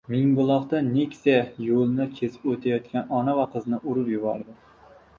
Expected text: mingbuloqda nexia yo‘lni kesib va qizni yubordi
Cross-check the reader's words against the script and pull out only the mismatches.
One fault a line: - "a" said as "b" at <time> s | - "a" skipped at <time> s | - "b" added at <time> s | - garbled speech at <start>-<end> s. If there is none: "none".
- "o‘tayotgan ona" added at 2.6 s
- "urib" added at 3.9 s